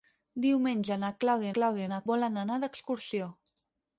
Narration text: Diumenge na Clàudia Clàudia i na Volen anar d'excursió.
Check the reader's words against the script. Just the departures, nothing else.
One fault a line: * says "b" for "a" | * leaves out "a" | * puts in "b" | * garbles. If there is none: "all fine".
all fine